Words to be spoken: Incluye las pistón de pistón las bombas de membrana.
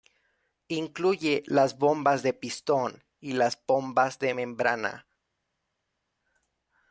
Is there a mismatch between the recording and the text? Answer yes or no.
yes